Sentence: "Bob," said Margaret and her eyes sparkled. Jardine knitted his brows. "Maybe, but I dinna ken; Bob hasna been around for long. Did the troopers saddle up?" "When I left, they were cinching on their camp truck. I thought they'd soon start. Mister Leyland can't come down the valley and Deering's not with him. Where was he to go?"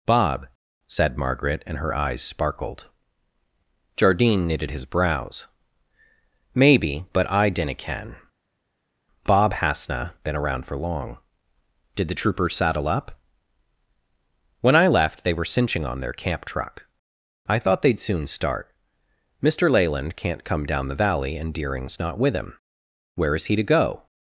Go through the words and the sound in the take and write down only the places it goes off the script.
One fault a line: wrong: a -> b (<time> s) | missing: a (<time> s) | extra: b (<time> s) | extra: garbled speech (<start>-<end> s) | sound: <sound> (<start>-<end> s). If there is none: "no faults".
wrong: was -> is (23.3 s)